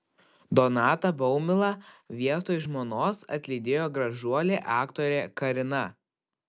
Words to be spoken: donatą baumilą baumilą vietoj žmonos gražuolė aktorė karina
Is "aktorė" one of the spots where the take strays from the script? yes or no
no